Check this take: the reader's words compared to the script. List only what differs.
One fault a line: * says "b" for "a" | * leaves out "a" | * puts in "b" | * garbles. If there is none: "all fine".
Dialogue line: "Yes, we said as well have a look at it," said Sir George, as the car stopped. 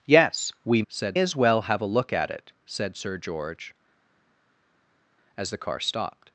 all fine